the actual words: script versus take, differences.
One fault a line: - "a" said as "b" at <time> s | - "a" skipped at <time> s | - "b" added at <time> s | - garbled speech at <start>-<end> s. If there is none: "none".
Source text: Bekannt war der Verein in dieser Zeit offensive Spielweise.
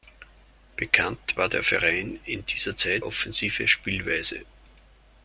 none